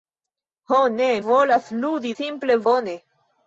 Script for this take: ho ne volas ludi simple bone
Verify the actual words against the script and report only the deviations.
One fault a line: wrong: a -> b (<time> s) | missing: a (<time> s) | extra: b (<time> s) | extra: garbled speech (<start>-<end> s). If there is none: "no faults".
no faults